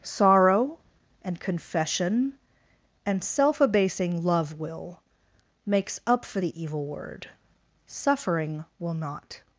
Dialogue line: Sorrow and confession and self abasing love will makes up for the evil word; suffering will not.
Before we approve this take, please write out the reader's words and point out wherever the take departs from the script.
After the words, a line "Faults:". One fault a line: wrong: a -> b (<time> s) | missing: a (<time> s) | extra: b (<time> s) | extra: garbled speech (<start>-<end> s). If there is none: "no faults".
Sorrow and confession and self abasing love will makes up for the evil word; suffering will not.
Faults:
no faults